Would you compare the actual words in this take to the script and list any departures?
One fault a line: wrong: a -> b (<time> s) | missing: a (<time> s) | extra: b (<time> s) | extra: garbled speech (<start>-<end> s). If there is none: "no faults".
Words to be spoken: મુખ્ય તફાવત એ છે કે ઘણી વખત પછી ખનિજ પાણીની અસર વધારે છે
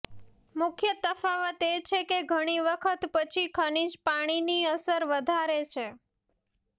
no faults